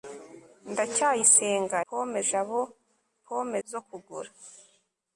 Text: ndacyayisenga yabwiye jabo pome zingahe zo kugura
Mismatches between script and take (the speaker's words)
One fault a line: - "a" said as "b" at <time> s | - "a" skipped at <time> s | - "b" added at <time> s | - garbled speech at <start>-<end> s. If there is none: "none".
- "yabwiye" said as "pome" at 1.9 s
- "zingahe" skipped at 3.6 s